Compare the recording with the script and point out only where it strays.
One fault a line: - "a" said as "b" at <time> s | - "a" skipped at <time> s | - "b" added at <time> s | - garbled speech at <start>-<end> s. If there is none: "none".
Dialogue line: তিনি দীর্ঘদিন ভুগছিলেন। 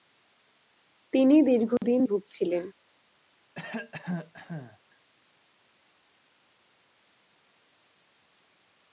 none